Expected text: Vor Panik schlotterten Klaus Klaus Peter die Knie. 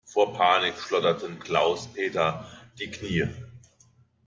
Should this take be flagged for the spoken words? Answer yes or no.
yes